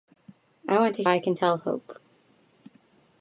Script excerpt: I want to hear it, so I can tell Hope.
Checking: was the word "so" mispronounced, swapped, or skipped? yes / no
yes